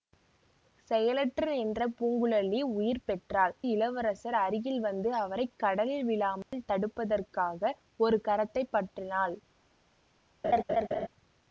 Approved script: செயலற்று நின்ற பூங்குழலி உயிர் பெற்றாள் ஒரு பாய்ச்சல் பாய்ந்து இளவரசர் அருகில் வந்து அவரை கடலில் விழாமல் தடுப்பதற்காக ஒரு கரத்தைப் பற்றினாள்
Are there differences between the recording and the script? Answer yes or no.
yes